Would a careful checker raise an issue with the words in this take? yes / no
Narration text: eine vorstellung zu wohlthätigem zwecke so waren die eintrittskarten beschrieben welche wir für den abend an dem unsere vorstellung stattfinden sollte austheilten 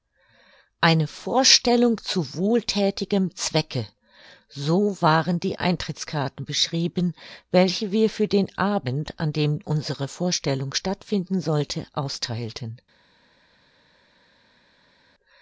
no